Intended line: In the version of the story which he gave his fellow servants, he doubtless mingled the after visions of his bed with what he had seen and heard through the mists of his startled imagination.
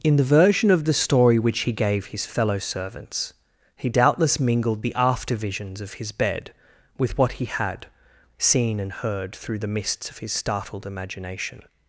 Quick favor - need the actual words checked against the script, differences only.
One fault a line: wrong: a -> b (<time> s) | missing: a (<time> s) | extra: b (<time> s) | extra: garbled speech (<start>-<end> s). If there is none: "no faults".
no faults